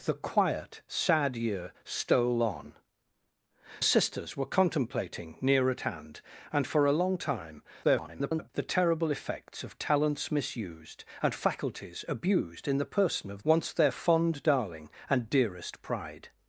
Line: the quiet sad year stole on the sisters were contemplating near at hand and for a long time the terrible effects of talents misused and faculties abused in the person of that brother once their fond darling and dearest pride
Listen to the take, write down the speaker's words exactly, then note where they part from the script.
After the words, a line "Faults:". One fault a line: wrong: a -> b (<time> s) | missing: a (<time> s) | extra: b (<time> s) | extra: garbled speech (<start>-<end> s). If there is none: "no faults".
the quiet sad year stole on sisters were contemplating near at hand and for a long time [garbled] the terrible effects of talents misused and faculties abused in the person of once their fond darling and dearest pride
Faults:
missing: the (2.7 s)
extra: garbled speech (7.8-8.5 s)
missing: that brother (13.4 s)